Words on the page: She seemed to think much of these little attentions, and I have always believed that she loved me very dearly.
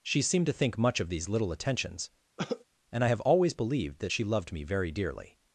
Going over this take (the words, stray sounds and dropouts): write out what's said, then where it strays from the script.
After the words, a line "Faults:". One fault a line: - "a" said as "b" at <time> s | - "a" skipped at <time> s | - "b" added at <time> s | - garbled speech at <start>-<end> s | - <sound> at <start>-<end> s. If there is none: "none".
She seemed to think much of these little attentions, and I have always believed that she loved me very dearly.
Faults:
- cough at 2.4-2.6 s